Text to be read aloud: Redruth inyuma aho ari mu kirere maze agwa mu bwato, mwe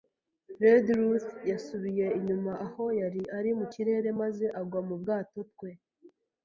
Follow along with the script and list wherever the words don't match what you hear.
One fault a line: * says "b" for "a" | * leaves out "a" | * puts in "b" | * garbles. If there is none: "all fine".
* puts in "yasubiye"
* puts in "yari"
* says "twe" for "mwe"